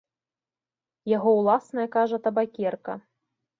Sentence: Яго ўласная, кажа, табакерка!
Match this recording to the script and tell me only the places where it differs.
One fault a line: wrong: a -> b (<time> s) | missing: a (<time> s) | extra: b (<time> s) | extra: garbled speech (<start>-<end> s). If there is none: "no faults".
no faults